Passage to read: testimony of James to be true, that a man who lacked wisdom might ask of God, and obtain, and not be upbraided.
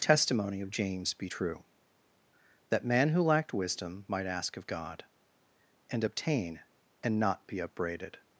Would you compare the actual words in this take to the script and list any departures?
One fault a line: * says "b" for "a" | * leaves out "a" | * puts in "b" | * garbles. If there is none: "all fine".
* leaves out "to"
* leaves out "a"